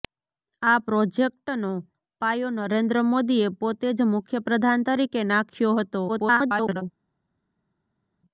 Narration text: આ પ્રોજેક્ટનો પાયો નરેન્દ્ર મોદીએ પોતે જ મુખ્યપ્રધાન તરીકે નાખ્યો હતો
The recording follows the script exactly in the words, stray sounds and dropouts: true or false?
false